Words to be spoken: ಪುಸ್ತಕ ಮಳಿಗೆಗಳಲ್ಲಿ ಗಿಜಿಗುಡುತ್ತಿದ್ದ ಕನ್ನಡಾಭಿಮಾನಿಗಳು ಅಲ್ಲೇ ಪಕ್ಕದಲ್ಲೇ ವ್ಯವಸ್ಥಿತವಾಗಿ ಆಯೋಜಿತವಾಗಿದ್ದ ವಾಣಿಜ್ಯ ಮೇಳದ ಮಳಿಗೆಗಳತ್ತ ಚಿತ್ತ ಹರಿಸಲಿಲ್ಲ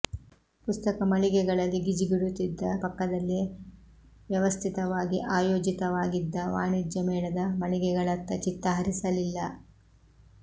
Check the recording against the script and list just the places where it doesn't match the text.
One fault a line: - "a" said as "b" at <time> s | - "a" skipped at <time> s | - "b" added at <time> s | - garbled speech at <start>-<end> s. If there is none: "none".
- "ಕನ್ನಡಾಭಿಮಾನಿಗಳು ಅಲ್ಲೇ" skipped at 2.6 s